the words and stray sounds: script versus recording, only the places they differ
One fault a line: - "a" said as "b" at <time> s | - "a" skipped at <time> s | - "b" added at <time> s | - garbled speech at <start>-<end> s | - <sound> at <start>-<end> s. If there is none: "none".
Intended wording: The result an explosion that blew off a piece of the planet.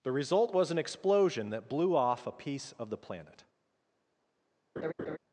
- "was" added at 0.5 s
- laugh at 4.8-5.2 s